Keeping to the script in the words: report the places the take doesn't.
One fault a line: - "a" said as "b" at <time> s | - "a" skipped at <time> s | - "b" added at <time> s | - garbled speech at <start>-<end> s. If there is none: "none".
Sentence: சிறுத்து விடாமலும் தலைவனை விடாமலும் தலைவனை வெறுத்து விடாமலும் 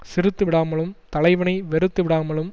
- "விடாமலும் தலைவனை" skipped at 1.5 s